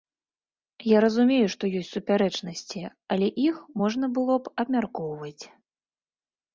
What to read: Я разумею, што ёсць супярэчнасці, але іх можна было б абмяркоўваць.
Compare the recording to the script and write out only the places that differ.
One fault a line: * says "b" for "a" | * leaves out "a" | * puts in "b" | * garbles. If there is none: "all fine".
all fine